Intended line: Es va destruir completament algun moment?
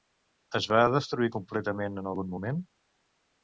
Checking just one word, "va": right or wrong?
right